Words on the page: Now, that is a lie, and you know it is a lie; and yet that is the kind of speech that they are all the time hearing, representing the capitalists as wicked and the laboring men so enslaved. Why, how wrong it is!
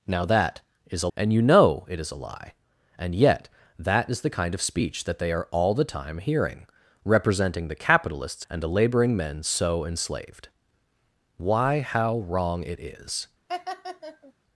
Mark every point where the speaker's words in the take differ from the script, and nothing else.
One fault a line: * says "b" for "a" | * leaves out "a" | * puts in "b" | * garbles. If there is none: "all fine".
* leaves out "lie"
* leaves out "as wicked"